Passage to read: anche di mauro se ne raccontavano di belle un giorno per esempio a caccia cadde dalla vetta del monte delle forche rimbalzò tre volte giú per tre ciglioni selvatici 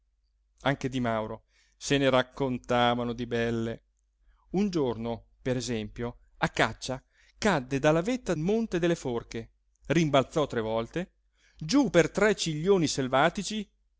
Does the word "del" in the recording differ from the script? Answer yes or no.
yes